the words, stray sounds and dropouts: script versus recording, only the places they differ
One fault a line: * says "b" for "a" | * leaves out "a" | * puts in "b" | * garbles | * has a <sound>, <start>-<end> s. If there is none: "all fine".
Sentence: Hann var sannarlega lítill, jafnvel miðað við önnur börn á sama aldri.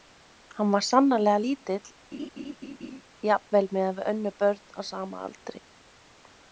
* has a laugh, 2.1-3.0 s